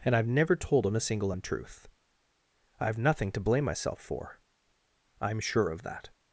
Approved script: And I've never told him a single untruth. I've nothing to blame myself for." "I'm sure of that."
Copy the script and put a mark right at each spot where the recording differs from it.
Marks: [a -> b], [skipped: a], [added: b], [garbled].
And I've never told him a single untruth. I've nothing to blame myself for." "I'm sure of that."